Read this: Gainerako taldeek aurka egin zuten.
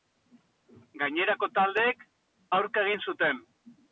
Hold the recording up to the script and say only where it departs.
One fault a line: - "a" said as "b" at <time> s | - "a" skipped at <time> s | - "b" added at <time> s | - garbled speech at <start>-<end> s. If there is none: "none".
none